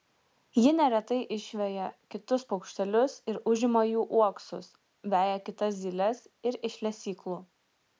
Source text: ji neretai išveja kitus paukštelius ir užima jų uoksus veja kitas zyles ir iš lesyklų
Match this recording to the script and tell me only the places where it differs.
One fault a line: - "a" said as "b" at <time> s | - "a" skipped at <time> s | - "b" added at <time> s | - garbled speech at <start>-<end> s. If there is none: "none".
none